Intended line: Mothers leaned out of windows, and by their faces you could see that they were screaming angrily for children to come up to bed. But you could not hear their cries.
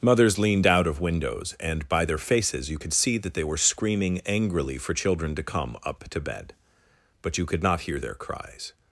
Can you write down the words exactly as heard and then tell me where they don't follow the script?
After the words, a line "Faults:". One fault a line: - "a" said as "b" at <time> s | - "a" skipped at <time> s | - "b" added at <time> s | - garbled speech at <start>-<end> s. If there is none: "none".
Mothers leaned out of windows, and by their faces you could see that they were screaming angrily for children to come up to bed. But you could not hear their cries.
Faults:
none